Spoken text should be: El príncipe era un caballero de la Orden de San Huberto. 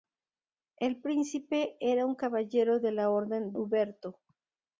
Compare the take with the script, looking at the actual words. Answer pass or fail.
fail